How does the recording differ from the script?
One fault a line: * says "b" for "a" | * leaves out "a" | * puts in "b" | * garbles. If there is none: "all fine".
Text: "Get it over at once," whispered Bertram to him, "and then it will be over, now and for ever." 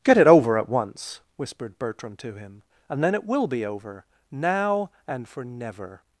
* says "never" for "ever"